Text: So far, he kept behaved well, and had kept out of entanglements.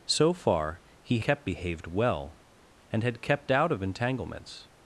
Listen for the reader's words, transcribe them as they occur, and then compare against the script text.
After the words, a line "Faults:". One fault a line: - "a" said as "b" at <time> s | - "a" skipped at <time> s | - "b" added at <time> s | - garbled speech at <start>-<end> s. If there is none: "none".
So far, he kept behaved well, and had kept out of entanglements.
Faults:
none